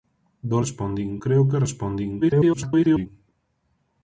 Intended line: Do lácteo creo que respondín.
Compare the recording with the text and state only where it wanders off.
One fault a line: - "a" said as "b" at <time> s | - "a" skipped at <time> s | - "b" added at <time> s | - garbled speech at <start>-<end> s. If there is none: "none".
- "lácteo" said as "respondín" at 0.6 s
- garbled speech at 2.2-3.1 s